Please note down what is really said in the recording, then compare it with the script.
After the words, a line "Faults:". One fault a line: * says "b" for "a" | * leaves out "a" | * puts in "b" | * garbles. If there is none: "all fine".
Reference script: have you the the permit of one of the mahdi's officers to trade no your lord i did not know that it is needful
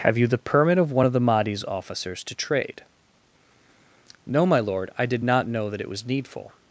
have you the permit of one of the mahdi's officers to trade no my lord i did not know that it was needful
Faults:
* leaves out "the"
* says "my" for "your"
* says "was" for "is"